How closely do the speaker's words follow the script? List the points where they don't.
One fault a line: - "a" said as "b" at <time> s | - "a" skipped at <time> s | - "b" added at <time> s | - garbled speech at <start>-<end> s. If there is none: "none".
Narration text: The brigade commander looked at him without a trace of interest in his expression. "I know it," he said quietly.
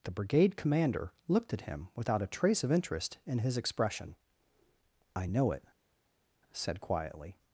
- "he" skipped at 5.6 s